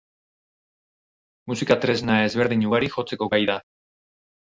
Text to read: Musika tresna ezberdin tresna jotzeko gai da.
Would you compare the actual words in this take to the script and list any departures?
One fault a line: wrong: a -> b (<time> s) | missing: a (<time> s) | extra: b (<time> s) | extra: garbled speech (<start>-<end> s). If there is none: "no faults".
wrong: tresna -> ugari (2.7 s)